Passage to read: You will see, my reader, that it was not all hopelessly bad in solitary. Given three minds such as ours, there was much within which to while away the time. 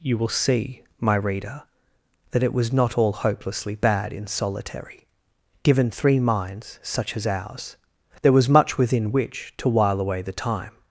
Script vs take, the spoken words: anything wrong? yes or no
no